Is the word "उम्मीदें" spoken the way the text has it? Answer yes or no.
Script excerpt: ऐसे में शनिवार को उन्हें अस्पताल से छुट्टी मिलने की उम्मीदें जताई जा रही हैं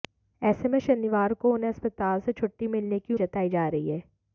no